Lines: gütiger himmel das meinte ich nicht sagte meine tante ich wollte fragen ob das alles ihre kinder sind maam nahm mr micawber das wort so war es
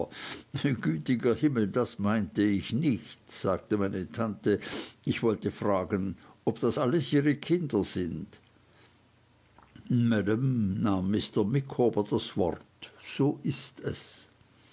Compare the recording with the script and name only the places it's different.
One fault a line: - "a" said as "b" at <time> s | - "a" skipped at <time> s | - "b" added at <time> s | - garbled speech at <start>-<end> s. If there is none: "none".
- "war" said as "ist" at 13.4 s